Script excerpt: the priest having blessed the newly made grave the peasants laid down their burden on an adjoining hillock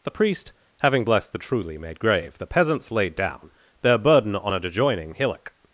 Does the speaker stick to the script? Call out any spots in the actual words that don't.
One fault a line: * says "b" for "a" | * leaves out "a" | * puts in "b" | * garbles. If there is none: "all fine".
* says "truly" for "newly"